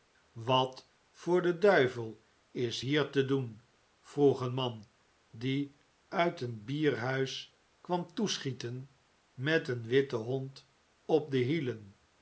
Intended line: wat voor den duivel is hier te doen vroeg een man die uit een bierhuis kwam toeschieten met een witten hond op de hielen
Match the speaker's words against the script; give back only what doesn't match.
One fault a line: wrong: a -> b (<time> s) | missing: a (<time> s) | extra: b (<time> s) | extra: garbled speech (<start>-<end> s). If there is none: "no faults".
no faults